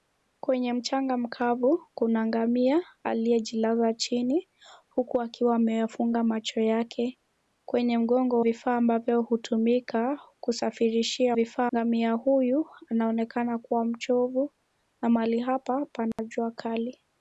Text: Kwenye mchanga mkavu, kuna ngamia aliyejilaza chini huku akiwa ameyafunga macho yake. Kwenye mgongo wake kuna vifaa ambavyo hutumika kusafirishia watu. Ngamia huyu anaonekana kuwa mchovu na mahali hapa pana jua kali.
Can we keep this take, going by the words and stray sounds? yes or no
no